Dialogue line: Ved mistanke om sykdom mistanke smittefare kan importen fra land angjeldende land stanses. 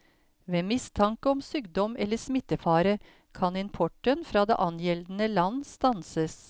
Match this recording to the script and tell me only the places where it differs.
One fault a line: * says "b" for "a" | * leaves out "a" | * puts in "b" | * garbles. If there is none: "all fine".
* says "eller" for "mistanke"
* says "det" for "land"